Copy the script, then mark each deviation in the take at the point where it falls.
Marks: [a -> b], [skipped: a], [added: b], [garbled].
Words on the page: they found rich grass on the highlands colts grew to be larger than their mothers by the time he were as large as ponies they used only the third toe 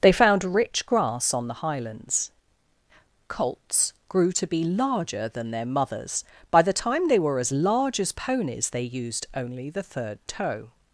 they found rich grass on the highlands colts grew to be larger than their mothers by the time [he -> they] were as large as ponies they used only the third toe